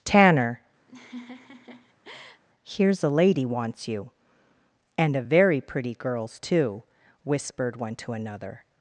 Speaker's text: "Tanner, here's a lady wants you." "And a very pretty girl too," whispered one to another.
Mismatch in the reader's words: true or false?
true